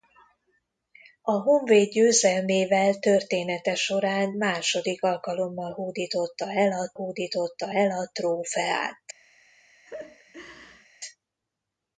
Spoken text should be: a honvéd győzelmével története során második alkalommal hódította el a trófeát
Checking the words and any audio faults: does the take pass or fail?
fail